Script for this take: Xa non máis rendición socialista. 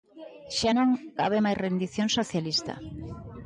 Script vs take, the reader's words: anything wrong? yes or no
yes